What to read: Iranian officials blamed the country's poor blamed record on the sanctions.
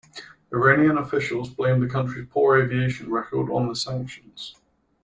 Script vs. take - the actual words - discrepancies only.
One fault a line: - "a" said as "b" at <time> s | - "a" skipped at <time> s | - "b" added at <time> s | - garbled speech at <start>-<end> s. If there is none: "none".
- "blamed" said as "aviation" at 2.6 s